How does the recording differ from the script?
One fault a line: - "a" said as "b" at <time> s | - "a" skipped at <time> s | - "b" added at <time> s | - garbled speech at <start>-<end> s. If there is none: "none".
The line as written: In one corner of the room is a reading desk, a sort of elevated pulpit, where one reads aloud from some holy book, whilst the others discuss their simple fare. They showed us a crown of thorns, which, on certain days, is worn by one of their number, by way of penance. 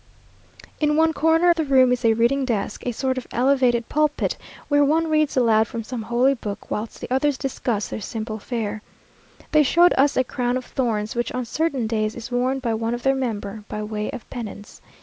none